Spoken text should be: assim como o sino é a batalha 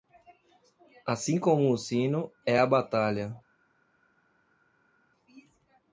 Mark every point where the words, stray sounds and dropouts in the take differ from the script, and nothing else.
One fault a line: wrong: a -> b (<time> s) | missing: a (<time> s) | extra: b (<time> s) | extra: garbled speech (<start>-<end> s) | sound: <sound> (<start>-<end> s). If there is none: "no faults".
no faults